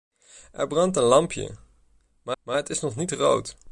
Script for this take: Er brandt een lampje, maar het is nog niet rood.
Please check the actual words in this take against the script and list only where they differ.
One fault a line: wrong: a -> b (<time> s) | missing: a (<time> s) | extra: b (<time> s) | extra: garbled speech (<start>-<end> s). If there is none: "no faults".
extra: maar (2.4 s)